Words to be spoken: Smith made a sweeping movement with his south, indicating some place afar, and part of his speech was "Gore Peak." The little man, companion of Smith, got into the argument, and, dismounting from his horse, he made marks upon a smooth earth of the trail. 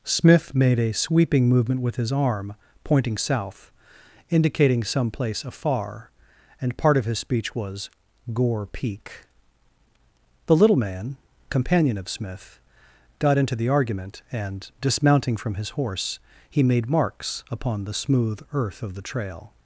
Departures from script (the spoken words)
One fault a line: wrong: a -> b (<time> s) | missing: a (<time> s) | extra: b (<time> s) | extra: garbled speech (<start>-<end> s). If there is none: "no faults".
extra: arm pointing (2.1 s)
wrong: a -> the (17.8 s)